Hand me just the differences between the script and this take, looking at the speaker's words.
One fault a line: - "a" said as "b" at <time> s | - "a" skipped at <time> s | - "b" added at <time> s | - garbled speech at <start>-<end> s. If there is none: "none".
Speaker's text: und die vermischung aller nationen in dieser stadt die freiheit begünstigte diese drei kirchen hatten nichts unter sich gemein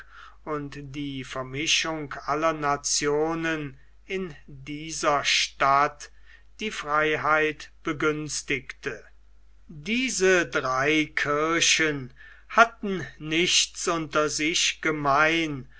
none